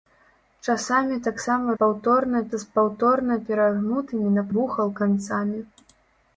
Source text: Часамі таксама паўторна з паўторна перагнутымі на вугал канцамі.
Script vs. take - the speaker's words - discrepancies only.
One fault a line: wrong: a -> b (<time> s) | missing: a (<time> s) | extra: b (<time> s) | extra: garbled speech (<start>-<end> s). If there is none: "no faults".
no faults